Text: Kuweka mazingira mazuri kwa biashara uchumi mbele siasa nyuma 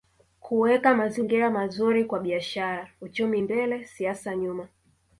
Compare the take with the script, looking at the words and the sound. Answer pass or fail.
pass